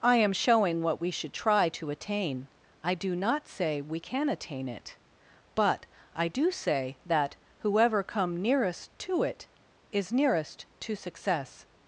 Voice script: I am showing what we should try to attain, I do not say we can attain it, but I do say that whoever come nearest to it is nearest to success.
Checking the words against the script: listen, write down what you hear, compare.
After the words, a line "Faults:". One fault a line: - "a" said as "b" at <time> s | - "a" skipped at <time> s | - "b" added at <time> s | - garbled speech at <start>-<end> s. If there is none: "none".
I am showing what we should try to attain, I do not say we can attain it, but I do say that whoever come nearest to it is nearest to success.
Faults:
none